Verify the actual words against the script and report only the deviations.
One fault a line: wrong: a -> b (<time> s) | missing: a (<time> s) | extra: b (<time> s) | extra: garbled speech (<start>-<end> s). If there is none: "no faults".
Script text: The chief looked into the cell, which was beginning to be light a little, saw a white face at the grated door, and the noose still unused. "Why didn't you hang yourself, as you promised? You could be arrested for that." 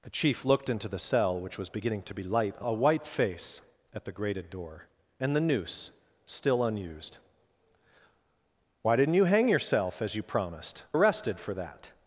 missing: little saw (2.6 s)
missing: You could be (10.8 s)